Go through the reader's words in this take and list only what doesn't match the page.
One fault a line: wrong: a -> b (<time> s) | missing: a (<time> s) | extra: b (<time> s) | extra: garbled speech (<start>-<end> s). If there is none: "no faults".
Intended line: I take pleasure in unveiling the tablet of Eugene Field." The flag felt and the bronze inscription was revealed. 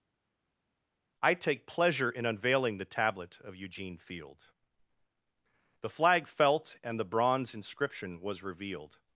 no faults